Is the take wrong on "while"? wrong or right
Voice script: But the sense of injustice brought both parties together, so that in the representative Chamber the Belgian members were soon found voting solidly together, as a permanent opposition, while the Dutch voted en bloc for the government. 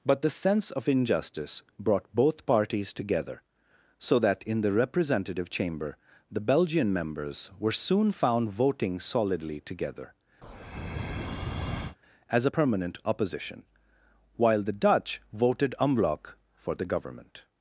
right